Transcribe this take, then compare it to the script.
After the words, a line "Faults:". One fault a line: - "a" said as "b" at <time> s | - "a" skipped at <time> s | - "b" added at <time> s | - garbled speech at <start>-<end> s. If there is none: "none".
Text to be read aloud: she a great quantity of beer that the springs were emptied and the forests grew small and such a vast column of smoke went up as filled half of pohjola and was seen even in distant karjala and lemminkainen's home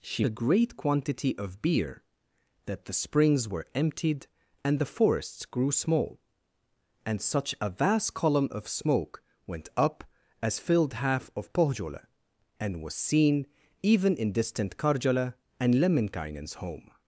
she a great quantity of beer that the springs were emptied and the forests grew small and such a vast column of smoke went up as filled half of pohjola and was seen even in distant karjala and lemminkainen's home
Faults:
none